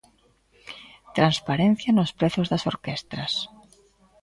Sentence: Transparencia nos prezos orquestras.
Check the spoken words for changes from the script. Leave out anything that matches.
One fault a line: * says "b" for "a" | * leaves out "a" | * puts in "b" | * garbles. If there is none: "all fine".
* puts in "das"